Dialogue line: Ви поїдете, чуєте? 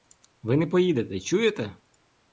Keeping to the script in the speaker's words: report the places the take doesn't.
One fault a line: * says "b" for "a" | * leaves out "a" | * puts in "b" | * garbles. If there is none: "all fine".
* puts in "не"